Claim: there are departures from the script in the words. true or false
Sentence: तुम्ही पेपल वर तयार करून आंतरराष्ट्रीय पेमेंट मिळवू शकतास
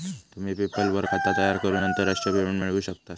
true